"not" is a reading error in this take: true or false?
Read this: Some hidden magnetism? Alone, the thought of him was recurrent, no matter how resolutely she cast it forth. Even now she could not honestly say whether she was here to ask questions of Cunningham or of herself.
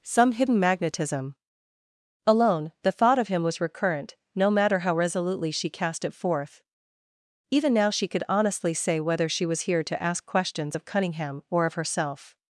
true